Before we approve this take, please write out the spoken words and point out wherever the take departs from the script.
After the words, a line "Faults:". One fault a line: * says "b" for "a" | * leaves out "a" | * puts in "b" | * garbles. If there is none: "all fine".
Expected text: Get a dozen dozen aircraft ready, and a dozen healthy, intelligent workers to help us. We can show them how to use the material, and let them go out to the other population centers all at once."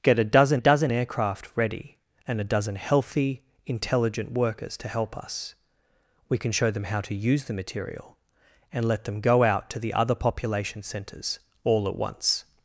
Get a dozen dozen aircraft ready, and a dozen healthy, intelligent workers to help us. We can show them how to use the material, and let them go out to the other population centers all at once."
Faults:
all fine